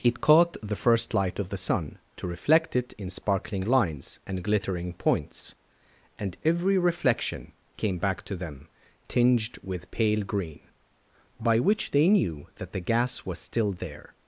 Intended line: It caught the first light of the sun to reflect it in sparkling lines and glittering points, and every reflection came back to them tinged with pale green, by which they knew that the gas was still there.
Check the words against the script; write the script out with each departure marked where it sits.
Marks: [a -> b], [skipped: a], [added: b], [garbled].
It caught the first light of the sun to reflect it in sparkling lines and glittering points, and every reflection came back to them tinged with pale green, by which they knew that the gas was still there.